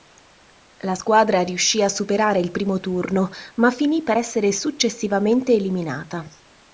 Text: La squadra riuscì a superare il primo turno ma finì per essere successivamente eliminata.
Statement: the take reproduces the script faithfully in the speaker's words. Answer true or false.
true